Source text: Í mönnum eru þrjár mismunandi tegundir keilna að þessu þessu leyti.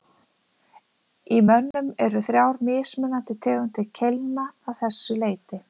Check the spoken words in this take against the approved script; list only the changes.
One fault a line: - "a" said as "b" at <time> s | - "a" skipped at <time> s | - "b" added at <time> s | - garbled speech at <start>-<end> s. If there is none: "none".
- "þessu" skipped at 5.2 s